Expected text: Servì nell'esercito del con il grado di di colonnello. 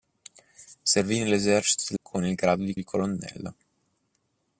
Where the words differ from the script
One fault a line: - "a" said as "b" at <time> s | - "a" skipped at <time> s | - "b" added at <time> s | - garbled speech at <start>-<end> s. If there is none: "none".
none